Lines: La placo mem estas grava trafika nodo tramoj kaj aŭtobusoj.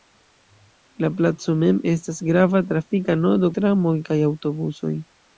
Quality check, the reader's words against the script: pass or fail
pass